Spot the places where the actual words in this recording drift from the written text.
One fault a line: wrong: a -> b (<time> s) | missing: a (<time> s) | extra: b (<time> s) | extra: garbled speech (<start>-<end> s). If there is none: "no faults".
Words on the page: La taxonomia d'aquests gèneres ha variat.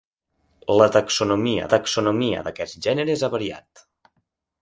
extra: taxonomia (1.7 s)